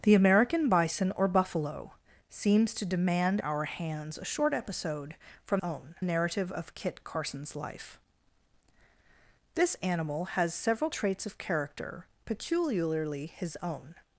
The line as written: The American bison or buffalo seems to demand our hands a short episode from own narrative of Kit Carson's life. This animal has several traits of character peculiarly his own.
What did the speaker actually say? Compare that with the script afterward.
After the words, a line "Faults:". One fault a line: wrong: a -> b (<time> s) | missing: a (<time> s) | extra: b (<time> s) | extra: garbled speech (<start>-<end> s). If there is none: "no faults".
The American bison or buffalo seems to demand our hands a short episode from own narrative of Kit Carson's life. This animal has several traits of character peculiarly his own.
Faults:
no faults